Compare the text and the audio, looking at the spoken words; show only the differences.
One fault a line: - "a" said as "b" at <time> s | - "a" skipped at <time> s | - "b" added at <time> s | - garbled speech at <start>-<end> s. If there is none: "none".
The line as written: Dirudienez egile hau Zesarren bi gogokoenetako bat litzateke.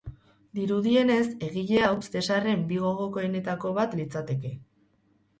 none